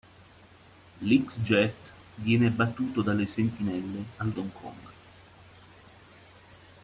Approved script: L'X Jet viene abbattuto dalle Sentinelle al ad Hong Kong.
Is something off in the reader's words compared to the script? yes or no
no